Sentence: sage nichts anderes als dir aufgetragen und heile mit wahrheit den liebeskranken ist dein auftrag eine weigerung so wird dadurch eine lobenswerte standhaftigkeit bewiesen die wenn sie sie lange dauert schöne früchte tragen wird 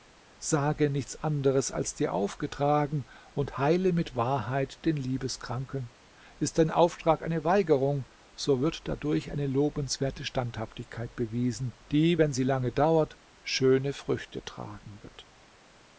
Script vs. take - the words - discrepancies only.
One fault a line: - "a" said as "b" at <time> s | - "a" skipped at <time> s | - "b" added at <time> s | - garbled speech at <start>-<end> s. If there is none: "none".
- "sie" skipped at 12.4 s